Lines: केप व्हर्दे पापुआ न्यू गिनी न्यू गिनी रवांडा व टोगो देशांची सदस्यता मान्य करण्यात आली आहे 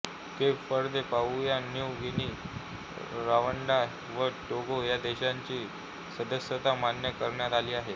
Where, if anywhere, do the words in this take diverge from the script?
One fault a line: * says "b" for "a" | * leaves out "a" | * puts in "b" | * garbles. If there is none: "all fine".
* leaves out "न्यू गिनी"
* puts in "ह्या"